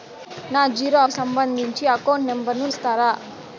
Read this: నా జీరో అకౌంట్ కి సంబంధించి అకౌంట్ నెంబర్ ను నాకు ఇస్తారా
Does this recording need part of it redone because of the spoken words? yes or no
yes